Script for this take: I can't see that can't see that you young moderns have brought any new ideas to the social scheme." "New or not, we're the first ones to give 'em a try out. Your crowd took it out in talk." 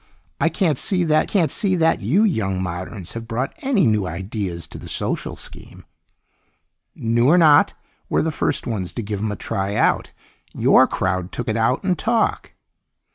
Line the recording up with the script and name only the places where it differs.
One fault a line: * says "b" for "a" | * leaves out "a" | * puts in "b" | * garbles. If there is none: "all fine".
all fine